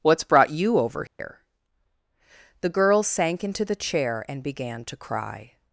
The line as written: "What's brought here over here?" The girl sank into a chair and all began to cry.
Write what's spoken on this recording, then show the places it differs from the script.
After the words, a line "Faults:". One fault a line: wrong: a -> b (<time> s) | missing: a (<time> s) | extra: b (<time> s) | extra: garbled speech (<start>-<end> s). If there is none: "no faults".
"What's brought you over here?" The girl sank into the chair and began to cry.
Faults:
wrong: here -> you (0.5 s)
wrong: a -> the (3.6 s)
missing: all (4.4 s)